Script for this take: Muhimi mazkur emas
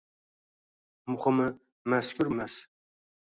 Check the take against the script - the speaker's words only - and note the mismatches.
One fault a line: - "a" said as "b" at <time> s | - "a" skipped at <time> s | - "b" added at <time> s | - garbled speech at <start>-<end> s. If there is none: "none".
none